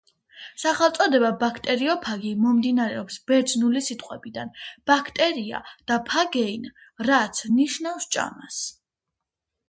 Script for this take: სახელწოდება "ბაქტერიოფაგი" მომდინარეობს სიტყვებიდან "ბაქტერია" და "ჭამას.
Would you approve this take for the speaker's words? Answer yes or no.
no